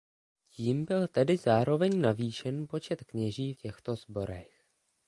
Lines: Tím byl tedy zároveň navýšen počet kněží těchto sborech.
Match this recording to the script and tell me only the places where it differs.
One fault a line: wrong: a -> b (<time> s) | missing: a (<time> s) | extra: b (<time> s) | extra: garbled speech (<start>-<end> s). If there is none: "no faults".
no faults